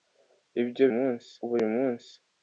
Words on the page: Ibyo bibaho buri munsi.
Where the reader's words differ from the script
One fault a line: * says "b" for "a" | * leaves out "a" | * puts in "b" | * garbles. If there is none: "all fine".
* says "munsi" for "bibaho"